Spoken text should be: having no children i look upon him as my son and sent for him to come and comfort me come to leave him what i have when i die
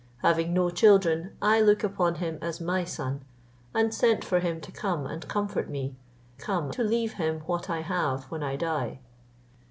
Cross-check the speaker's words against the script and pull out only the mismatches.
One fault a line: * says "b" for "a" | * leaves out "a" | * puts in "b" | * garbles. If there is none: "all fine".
all fine